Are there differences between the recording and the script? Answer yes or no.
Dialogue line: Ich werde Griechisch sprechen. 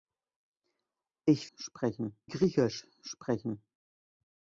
yes